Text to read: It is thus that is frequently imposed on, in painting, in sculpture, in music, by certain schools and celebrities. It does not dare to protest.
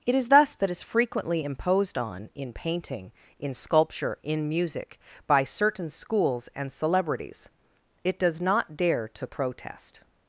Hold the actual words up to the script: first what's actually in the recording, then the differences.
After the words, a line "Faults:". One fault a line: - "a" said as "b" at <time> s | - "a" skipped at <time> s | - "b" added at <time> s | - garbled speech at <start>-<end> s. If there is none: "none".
It is thus that is frequently imposed on, in painting, in sculpture, in music, by certain schools and celebrities. It does not dare to protest.
Faults:
none